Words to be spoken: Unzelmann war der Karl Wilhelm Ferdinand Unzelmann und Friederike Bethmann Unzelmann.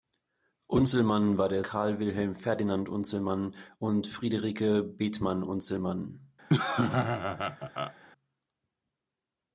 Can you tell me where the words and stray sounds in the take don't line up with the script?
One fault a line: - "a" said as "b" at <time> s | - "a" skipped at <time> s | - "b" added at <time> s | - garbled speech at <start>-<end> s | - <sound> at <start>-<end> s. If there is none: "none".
- laugh at 6.5-7.9 s